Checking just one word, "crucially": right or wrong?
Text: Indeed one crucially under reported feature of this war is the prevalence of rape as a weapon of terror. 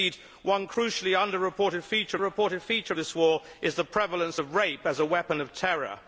right